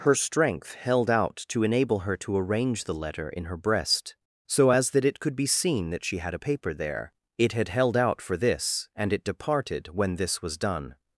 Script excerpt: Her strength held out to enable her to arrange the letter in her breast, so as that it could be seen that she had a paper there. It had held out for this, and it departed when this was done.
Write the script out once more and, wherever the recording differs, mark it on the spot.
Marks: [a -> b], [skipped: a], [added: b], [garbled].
Her strength held out to enable her to arrange the letter in her breast, so as that it could be seen that she had a paper there. It had held out for this, and it departed when this was done.